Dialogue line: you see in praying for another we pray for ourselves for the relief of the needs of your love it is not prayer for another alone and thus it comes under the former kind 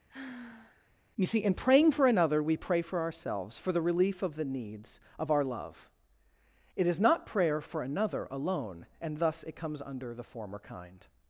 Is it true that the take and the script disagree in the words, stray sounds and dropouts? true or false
true